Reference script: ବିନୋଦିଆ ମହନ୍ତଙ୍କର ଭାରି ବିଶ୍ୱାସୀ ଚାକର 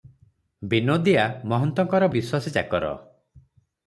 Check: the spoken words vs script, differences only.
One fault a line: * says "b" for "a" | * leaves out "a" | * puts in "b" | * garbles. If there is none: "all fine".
* leaves out "ଭାରି"